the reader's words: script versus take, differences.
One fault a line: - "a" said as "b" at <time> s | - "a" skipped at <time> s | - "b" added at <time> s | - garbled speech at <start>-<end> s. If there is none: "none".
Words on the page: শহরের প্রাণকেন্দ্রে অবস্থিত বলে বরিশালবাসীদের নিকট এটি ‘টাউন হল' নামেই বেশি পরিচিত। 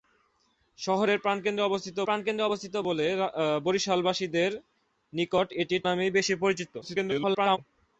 - "প্রাণকেন্দ্রে অবস্থিত" added at 2.0 s
- "টাউন হল" skipped at 5.8 s
- garbled speech at 6.8-7.6 s